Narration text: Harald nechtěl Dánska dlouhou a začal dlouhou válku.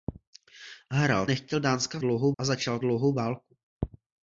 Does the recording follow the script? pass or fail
pass